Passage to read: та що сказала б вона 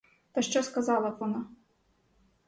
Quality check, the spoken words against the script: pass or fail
pass